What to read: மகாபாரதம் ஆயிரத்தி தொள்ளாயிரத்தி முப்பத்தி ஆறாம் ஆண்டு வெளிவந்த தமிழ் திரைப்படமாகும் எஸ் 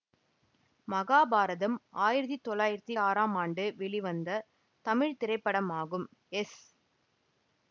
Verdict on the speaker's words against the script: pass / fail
fail